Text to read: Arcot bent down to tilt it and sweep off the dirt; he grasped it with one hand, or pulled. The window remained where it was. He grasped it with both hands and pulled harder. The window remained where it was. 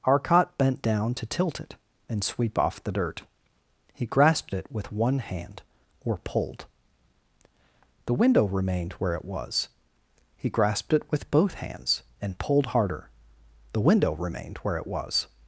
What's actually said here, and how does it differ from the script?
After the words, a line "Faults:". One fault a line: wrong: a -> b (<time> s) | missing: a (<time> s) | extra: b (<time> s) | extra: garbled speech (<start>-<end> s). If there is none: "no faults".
Arcot bent down to tilt it and sweep off the dirt; he grasped it with one hand, or pulled. The window remained where it was. He grasped it with both hands and pulled harder. The window remained where it was.
Faults:
no faults